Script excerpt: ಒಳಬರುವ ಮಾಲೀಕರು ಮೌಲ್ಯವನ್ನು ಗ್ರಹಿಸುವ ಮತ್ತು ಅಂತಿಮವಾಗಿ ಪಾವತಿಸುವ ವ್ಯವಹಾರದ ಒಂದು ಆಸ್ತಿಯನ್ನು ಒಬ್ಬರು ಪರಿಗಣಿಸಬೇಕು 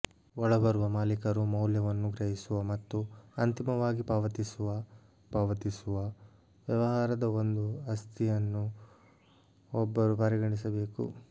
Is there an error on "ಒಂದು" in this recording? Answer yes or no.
no